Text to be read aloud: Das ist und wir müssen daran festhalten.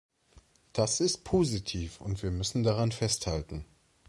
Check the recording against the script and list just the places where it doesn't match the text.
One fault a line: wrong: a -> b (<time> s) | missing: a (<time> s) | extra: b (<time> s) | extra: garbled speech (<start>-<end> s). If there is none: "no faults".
extra: positiv (1.2 s)